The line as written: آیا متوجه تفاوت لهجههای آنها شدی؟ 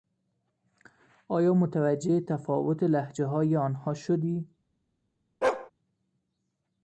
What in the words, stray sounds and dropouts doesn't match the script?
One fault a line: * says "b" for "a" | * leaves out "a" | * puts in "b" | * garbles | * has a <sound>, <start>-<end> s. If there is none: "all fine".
* has a bark, 5.4-5.7 s